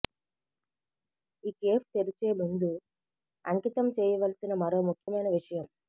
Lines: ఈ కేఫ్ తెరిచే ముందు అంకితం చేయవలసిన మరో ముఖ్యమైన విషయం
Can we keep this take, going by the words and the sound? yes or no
no